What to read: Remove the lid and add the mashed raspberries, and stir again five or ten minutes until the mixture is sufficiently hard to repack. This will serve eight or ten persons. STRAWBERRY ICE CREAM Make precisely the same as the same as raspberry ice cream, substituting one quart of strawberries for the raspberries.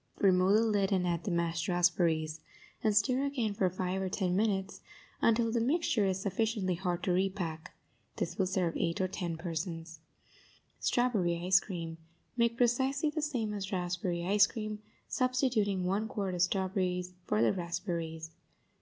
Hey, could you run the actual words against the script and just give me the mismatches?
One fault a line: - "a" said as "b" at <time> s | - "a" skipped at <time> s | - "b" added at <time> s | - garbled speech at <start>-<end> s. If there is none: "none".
- "for" added at 3.5 s
- "the same as" skipped at 13.7 s